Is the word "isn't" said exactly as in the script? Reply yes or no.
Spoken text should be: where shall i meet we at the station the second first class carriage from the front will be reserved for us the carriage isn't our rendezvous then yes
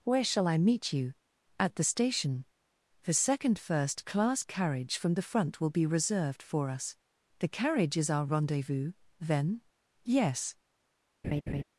no